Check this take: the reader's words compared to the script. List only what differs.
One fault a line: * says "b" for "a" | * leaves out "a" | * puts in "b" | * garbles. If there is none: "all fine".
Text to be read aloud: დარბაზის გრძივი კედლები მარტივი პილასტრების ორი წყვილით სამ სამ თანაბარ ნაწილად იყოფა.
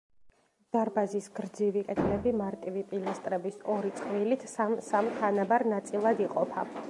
all fine